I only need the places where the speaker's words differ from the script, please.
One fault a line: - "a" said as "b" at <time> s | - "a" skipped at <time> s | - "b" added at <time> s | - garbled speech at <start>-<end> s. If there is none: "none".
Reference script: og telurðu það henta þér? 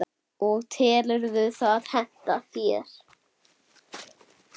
none